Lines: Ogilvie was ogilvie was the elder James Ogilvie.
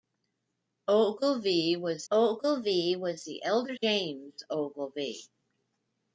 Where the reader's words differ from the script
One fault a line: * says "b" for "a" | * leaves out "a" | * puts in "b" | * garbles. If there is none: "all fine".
all fine